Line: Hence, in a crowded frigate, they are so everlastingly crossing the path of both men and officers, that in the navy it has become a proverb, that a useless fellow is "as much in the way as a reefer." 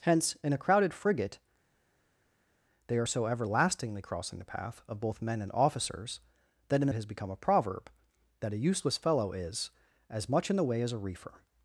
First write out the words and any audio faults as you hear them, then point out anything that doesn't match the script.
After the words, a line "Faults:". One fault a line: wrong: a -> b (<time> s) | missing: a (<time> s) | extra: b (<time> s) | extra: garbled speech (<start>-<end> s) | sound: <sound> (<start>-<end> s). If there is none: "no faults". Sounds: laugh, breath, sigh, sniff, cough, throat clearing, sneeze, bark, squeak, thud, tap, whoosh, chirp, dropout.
Hence, in a crowded frigate, they are so everlastingly crossing the path of both men and officers, that in the it has become a proverb, that a useless fellow is "as much in the way as a reefer."
Faults:
missing: navy (6.9 s)